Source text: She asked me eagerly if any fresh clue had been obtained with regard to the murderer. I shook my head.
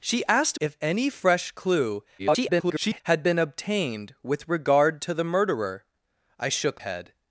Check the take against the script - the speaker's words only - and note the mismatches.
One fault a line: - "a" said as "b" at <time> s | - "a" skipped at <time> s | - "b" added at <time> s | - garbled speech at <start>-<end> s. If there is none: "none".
- "me eagerly" skipped at 0.6 s
- garbled speech at 2.2-3.0 s
- "my" skipped at 6.8 s